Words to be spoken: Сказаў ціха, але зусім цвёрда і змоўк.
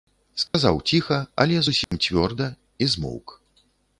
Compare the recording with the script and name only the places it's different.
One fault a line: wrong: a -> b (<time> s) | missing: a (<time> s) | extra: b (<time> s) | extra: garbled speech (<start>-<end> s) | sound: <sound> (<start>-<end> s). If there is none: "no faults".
sound: dropout (0.5-0.5 s)
sound: dropout (1.8-1.9 s)